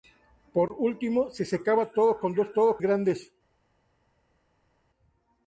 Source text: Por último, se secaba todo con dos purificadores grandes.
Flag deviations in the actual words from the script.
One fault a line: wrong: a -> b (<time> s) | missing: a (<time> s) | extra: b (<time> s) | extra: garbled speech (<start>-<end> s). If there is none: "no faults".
wrong: purificadores -> todo (2.5 s)